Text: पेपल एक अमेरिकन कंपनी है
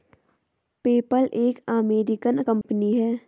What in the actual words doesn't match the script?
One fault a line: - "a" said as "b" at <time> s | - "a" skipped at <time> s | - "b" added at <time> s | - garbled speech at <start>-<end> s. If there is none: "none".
none